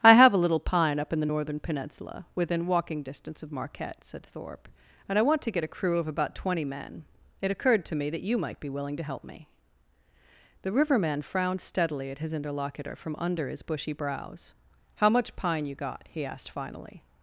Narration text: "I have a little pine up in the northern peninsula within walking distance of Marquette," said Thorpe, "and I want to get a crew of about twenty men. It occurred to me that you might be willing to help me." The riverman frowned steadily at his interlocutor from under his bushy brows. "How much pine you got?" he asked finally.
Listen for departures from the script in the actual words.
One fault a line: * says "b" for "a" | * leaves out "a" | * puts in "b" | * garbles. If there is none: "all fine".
all fine